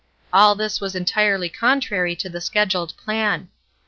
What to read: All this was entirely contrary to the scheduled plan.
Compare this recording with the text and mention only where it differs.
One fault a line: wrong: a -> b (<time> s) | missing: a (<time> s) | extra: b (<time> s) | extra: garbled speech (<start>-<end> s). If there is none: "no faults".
no faults